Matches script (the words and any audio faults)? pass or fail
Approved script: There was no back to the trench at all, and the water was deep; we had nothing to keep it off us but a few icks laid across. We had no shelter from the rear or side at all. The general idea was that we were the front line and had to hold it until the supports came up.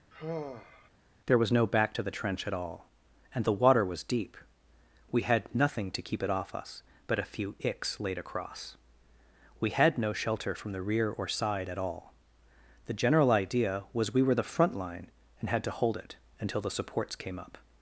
fail